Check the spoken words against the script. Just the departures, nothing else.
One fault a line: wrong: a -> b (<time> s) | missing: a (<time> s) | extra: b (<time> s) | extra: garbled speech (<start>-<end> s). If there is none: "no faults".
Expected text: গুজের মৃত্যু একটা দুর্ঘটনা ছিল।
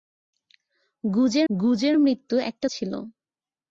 extra: গুজের (1.5 s)
missing: দুর্ঘটনা (2.7 s)